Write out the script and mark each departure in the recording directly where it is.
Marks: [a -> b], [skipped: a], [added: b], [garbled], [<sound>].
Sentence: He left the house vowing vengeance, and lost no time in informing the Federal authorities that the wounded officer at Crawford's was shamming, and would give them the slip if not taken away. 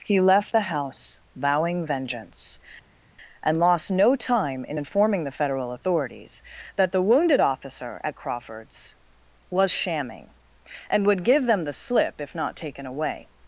He left the house vowing vengeance, and lost no time in informing the Federal authorities that the wounded officer at Crawford's was shamming, and would give them the slip if not taken away.